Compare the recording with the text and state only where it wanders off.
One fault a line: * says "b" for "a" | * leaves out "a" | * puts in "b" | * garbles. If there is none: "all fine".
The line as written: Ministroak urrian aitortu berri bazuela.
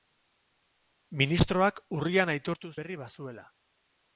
all fine